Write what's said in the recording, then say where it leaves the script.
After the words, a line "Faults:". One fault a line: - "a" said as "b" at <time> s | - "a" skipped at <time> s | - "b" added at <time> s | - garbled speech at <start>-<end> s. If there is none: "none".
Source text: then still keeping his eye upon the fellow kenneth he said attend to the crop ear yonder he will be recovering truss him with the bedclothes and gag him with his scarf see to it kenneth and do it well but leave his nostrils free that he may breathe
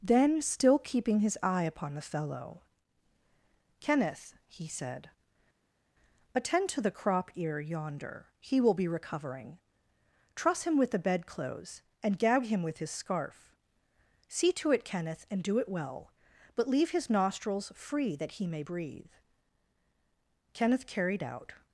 then still keeping his eye upon the fellow kenneth he said attend to the crop ear yonder he will be recovering truss him with the bedclothes and gag him with his scarf see to it kenneth and do it well but leave his nostrils free that he may breathe kenneth carried out
Faults:
- "kenneth carried out" added at 20.5 s